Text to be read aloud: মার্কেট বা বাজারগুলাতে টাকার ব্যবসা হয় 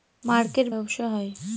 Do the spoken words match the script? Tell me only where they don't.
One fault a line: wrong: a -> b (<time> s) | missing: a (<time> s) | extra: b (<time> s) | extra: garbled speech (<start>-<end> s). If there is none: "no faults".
missing: বা বাজারগুলাতে টাকার (0.7 s)